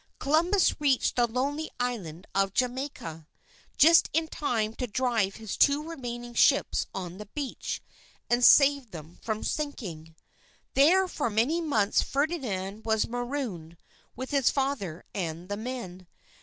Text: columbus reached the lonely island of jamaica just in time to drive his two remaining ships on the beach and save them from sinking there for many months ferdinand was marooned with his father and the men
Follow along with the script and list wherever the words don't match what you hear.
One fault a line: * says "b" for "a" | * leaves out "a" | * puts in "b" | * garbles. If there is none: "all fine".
all fine